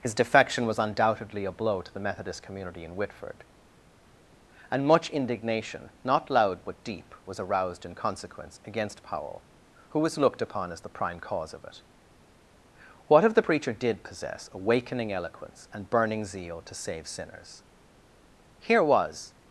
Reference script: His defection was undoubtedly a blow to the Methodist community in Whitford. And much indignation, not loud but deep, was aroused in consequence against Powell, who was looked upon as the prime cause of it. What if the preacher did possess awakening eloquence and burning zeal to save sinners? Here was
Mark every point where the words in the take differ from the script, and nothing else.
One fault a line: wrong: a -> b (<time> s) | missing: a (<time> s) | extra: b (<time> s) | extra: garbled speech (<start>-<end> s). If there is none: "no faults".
no faults